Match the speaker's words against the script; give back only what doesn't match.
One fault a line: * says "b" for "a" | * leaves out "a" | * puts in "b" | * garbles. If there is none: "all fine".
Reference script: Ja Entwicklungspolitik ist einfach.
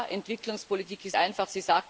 all fine